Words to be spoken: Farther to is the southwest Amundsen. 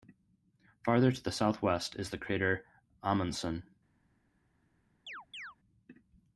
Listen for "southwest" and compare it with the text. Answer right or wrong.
wrong